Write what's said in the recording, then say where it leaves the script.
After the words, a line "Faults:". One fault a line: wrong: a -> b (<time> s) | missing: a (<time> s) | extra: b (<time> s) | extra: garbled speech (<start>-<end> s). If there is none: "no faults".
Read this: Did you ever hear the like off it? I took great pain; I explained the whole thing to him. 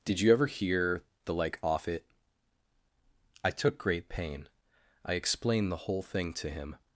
Did you ever hear the like off it? I took great pain; I explained the whole thing to him.
Faults:
no faults